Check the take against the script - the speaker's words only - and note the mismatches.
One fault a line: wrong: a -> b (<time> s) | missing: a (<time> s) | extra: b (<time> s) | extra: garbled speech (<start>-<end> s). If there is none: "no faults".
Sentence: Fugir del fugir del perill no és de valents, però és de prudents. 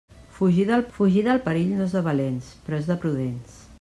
no faults